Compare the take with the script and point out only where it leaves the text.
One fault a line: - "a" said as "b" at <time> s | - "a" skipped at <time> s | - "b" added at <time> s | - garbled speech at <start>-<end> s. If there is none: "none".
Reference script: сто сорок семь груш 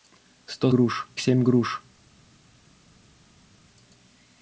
- "сорок" said as "груш" at 0.7 s